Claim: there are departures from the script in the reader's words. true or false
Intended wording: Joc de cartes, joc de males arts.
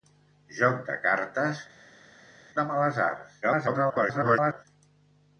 true